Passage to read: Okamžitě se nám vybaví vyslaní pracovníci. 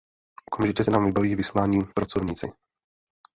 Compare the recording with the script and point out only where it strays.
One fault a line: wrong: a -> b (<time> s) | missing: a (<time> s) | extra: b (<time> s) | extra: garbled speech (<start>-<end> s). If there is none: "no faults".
no faults